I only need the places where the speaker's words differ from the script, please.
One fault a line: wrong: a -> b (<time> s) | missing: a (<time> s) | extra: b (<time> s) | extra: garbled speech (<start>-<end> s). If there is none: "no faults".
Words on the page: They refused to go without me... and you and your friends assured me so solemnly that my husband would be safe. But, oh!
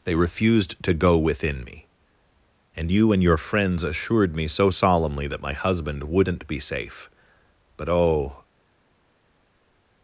wrong: without -> within (1.2 s)
wrong: would -> wouldn't (6.0 s)